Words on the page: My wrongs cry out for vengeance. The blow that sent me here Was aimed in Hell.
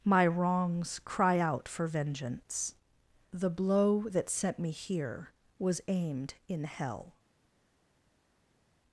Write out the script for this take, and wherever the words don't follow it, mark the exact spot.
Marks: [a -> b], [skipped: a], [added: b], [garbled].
My wrongs cry out for vengeance. The blow that sent me here Was aimed in Hell.